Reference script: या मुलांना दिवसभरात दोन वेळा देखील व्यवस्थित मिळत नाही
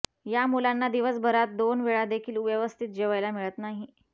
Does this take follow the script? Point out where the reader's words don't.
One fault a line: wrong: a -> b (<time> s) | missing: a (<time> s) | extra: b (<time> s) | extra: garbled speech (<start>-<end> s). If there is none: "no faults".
extra: जेवायला (2.9 s)